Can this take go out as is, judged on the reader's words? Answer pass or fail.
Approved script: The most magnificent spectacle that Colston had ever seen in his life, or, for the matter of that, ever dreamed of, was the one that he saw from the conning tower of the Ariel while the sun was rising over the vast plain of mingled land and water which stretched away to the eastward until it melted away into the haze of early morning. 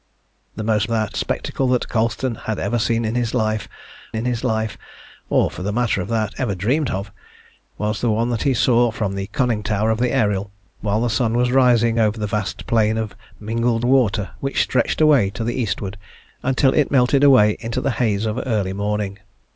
fail